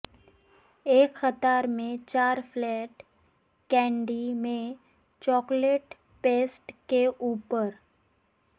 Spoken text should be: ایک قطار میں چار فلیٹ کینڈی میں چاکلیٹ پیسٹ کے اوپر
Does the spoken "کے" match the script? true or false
true